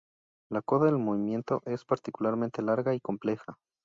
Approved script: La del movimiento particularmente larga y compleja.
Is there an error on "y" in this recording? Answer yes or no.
no